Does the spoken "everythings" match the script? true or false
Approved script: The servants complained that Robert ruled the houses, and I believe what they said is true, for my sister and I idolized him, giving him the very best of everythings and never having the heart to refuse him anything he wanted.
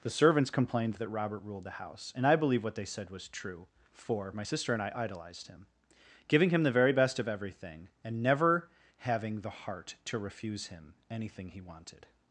false